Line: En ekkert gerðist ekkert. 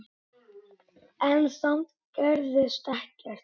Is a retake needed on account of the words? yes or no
yes